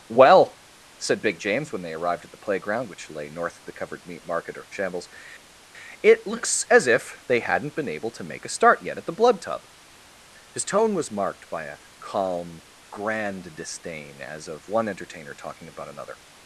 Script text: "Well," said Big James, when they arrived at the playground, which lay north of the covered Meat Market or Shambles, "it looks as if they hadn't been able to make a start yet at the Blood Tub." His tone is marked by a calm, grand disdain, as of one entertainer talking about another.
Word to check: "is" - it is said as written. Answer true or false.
false